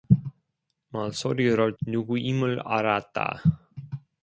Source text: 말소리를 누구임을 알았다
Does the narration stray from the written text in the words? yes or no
no